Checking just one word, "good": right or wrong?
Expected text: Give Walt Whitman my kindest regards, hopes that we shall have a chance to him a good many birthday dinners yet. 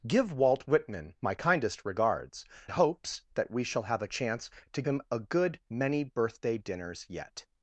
right